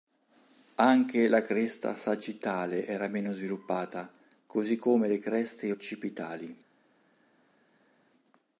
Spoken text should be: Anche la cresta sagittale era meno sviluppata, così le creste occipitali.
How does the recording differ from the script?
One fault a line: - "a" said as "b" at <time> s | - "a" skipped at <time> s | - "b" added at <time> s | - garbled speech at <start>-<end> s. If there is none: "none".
- "come" added at 4.8 s